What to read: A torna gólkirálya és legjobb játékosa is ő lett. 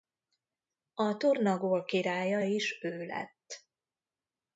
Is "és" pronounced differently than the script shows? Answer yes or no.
yes